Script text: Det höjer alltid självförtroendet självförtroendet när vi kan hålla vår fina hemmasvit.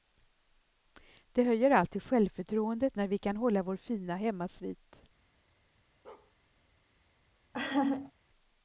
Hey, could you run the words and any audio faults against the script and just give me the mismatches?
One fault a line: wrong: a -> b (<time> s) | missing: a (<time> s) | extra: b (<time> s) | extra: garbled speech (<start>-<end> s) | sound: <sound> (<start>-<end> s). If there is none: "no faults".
missing: självförtroendet (3.0 s)
sound: bark (6.0-6.3 s)
sound: laugh (7.5-8.1 s)